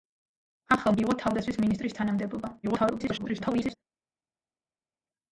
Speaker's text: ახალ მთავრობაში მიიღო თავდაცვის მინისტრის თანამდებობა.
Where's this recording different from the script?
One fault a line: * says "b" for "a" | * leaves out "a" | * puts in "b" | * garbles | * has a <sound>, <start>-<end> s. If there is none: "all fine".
* leaves out "მთავრობაში"
* garbles